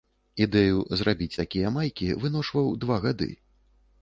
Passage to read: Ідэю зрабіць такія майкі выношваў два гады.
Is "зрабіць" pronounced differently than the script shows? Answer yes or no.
no